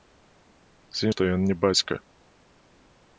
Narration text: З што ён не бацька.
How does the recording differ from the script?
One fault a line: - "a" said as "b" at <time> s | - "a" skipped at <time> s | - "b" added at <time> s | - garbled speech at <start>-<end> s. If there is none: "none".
none